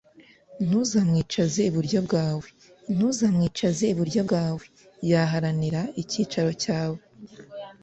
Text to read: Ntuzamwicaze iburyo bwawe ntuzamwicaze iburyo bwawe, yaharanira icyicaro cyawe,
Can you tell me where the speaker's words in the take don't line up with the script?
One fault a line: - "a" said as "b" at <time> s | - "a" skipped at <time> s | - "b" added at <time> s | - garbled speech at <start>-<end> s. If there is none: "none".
none